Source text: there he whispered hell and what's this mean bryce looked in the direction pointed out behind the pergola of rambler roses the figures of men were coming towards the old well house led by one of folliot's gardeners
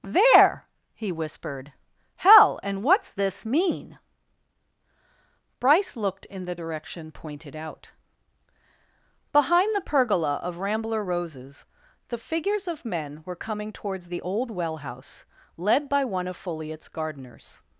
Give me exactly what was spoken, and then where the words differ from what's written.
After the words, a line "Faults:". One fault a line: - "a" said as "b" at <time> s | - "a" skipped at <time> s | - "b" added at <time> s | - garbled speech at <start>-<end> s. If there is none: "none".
there he whispered hell and what's this mean bryce looked in the direction pointed out behind the pergola of rambler roses the figures of men were coming towards the old well house led by one of folliot's gardeners
Faults:
none